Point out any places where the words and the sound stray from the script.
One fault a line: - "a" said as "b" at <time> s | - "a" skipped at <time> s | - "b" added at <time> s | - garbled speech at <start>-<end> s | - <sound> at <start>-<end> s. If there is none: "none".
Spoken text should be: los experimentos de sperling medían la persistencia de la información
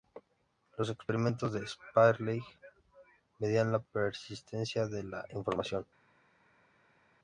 none